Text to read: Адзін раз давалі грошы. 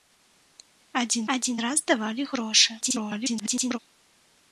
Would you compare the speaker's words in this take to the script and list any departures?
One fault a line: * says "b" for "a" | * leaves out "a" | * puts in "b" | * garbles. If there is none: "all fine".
* puts in "адзін"
* garbles